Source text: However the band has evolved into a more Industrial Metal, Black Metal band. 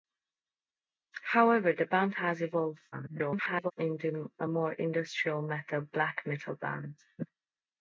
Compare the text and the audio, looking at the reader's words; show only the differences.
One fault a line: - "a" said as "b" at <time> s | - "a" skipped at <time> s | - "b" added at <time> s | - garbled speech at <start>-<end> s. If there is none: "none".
- garbled speech at 2.9-3.7 s